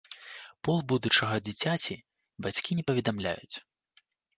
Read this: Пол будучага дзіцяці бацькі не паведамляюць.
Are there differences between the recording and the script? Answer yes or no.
no